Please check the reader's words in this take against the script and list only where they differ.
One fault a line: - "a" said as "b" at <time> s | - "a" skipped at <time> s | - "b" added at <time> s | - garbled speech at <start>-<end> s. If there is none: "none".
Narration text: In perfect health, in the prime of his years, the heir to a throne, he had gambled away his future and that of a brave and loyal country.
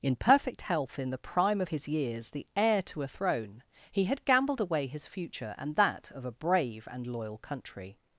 none